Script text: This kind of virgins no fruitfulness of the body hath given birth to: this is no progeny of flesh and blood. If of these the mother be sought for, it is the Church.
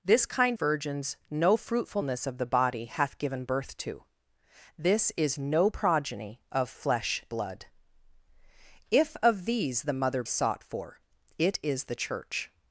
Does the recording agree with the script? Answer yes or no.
no